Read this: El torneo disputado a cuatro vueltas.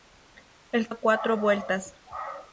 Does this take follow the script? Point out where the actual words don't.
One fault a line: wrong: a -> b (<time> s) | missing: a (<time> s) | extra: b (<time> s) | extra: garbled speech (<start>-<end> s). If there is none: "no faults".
missing: torneo disputado (0.9 s)